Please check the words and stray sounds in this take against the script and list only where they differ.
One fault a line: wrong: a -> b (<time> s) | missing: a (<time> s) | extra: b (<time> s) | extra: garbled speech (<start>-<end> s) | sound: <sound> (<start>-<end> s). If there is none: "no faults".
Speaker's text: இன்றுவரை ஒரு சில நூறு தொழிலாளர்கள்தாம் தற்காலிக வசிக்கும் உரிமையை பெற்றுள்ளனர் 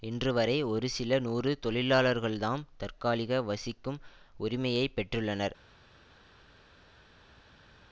no faults